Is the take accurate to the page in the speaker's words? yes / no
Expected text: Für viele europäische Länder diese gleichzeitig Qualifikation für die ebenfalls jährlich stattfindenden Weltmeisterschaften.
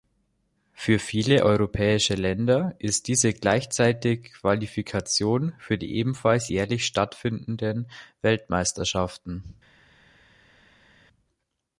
no